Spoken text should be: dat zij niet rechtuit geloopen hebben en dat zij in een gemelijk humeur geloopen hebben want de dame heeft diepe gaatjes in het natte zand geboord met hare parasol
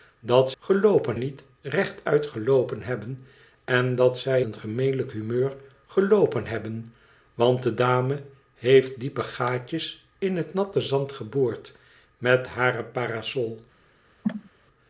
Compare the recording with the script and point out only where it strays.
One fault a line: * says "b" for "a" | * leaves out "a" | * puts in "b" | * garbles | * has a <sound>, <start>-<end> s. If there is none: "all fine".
* says "geloopen" for "zij"
* leaves out "in"
* has a cough, 14.2-14.5 s